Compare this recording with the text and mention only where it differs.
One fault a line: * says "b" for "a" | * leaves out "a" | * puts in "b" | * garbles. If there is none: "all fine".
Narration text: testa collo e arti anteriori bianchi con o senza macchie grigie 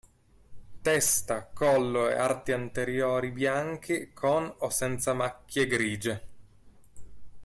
all fine